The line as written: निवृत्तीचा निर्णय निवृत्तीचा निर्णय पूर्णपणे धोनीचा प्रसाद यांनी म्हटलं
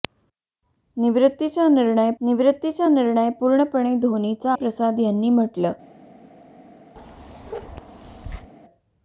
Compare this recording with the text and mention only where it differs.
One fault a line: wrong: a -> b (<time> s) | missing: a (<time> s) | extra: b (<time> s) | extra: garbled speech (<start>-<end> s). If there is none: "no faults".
no faults